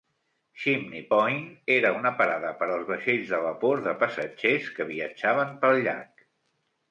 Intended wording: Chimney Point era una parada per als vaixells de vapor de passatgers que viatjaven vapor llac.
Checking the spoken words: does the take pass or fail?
fail